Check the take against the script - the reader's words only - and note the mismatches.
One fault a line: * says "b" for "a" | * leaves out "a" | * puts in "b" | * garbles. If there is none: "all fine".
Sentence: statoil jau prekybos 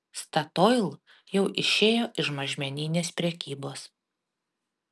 * puts in "išėjo iš mažmeninės"